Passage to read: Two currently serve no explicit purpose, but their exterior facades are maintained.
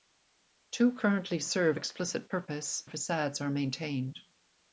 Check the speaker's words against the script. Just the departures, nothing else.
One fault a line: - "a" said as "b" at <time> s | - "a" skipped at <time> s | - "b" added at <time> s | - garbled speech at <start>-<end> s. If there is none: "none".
- "no" skipped at 1.8 s
- "but their exterior" skipped at 2.8 s